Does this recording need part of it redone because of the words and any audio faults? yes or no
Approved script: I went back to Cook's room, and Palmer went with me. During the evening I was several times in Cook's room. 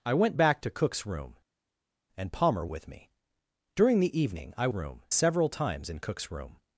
yes